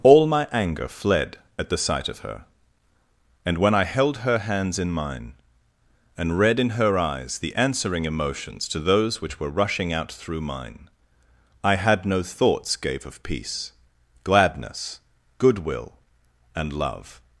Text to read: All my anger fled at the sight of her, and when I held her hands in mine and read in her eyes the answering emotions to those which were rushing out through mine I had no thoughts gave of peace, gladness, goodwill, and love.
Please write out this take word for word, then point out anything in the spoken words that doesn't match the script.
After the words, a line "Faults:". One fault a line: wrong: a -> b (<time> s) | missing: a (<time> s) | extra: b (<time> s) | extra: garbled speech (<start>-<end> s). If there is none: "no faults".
All my anger fled at the sight of her, and when I held her hands in mine and read in her eyes the answering emotions to those which were rushing out through mine I had no thoughts gave of peace, gladness, goodwill, and love.
Faults:
no faults